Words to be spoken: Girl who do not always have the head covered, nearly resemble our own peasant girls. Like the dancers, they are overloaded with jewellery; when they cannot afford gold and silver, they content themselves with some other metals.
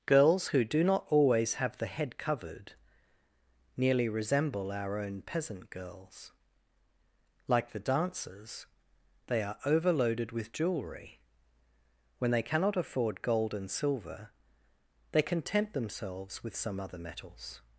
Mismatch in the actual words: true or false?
true